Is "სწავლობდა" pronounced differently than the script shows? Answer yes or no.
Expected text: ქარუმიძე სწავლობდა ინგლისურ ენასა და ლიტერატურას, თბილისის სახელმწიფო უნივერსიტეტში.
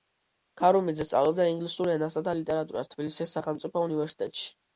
no